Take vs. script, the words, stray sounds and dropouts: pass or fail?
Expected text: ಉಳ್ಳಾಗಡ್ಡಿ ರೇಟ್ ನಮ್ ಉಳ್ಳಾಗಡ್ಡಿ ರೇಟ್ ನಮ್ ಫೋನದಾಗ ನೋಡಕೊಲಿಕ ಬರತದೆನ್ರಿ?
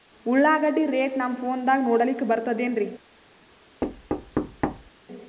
fail